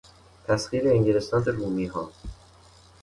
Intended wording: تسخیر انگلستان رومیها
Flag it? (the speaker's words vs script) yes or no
no